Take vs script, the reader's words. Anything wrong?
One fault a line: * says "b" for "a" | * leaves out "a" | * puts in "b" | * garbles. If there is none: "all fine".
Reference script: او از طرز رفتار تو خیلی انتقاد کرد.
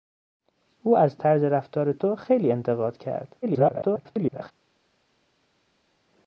* garbles